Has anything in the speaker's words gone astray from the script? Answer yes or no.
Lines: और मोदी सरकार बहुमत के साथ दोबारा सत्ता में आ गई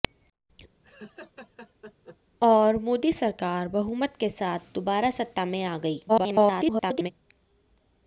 yes